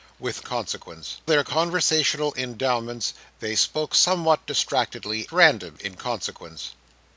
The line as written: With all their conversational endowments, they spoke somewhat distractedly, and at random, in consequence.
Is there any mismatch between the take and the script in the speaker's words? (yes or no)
yes